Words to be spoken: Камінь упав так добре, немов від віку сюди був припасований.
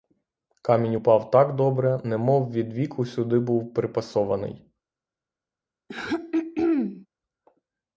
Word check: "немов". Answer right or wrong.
right